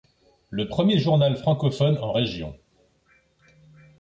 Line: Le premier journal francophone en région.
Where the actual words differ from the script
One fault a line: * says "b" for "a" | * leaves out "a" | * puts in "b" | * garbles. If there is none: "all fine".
all fine